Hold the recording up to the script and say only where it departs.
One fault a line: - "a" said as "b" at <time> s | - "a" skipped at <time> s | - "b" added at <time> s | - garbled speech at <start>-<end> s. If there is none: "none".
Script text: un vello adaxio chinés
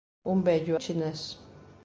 - "adaxio" skipped at 0.8 s